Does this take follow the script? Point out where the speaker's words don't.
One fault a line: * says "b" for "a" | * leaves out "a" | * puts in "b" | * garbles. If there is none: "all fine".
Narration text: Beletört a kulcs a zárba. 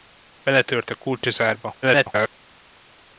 * garbles